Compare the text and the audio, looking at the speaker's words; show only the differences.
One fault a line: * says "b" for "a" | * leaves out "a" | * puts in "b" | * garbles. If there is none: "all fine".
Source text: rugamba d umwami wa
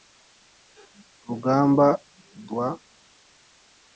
* leaves out "umwami"